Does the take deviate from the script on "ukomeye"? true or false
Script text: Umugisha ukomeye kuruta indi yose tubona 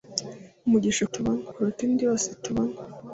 true